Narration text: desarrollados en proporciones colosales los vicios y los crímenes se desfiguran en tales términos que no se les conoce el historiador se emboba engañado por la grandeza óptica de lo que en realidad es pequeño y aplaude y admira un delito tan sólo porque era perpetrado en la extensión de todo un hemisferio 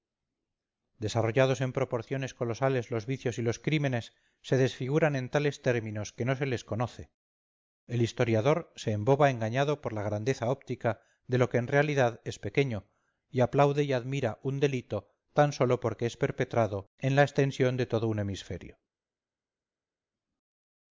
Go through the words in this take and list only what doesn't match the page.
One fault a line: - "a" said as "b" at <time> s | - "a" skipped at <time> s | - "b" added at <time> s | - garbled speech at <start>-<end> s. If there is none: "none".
- "era" said as "es" at 16.1 s